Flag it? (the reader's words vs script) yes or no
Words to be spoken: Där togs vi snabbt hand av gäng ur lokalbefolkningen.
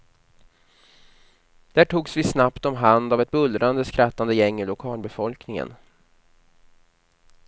yes